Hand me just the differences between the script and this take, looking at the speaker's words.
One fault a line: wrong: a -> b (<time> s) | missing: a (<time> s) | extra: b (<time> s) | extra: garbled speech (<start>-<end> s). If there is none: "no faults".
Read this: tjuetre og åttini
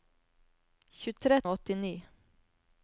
no faults